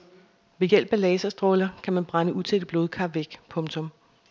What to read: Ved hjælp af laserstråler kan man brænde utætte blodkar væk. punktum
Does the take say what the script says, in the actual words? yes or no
yes